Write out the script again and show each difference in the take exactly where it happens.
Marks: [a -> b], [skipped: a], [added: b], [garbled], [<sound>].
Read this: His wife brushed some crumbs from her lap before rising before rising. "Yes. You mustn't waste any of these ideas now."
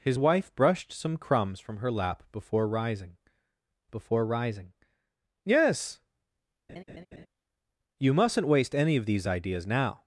His wife brushed some crumbs from her lap before rising before rising. "Yes. [laugh] You mustn't waste any of these ideas now."